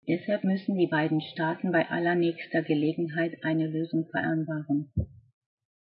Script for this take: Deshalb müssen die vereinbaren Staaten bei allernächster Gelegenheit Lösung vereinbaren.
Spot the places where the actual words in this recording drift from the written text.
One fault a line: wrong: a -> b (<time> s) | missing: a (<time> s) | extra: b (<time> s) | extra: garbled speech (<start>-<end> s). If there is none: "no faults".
wrong: vereinbaren -> beiden (0.9 s)
extra: eine (3.4 s)